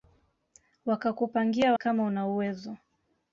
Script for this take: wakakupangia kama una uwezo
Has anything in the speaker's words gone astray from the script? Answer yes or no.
no